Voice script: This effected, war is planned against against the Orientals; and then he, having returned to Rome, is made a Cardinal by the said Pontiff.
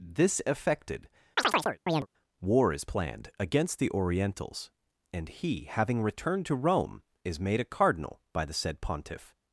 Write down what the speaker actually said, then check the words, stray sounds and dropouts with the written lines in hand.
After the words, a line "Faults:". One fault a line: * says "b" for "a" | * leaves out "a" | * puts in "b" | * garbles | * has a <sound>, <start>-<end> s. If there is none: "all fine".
This effected, war is planned against the Orientals; and he, having returned to Rome, is made a Cardinal by the said Pontiff.
Faults:
* has a chirp, 1.4-2.1 s
* leaves out "against"
* leaves out "then"